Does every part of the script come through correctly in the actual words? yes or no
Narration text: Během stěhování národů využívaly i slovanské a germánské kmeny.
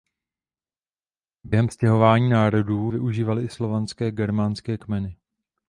yes